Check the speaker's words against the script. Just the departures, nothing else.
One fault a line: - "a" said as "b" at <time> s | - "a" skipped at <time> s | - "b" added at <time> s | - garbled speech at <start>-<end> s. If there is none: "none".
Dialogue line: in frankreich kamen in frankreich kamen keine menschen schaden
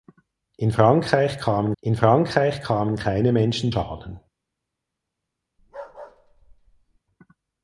none